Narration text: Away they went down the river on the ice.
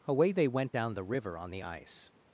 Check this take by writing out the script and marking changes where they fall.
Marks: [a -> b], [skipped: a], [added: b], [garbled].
Away they went down the river on the ice.